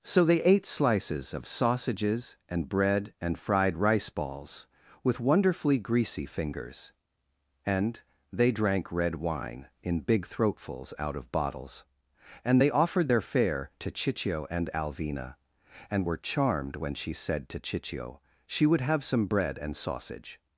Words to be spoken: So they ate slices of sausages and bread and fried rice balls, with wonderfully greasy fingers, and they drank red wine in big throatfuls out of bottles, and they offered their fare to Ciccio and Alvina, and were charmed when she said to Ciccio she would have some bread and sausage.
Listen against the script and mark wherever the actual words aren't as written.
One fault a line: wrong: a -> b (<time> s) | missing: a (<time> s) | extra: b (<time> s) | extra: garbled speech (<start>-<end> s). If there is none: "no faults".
no faults